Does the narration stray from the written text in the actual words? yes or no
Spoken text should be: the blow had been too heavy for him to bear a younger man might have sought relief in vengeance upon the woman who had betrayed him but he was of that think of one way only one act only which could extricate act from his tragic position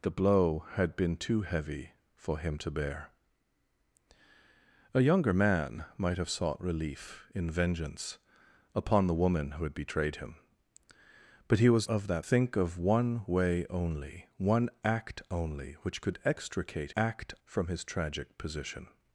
no